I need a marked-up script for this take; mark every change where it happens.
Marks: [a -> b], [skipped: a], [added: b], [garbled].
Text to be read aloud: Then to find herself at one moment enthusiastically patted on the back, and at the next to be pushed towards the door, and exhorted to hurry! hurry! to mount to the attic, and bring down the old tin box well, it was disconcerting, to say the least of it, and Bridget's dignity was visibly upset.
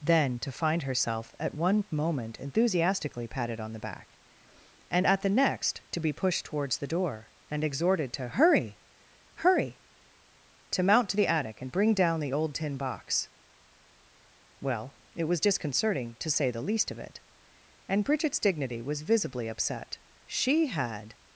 Then to find herself at one moment enthusiastically patted on the back, and at the next to be pushed towards the door, and exhorted to hurry! hurry! to mount to the attic, and bring down the old tin box well, it was disconcerting, to say the least of it, and Bridget's dignity was visibly upset. [added: She had]